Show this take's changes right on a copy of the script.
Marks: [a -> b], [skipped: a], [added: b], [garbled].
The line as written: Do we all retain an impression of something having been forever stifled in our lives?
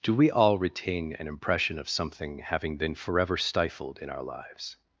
Do we all retain an impression of something having been forever stifled in our lives?